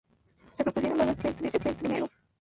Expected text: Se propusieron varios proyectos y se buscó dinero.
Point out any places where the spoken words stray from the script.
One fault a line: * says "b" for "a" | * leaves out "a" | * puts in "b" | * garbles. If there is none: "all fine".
* says "proyectos" for "buscó"